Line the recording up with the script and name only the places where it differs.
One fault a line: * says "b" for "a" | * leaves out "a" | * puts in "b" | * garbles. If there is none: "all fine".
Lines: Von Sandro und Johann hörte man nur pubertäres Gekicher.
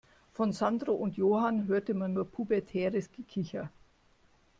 all fine